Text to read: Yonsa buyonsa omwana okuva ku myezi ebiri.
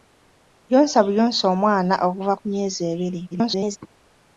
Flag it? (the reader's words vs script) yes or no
yes